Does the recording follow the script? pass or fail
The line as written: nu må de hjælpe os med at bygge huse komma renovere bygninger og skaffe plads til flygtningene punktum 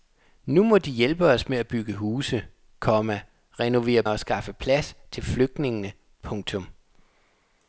fail